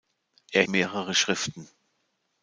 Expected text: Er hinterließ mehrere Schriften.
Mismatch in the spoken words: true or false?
true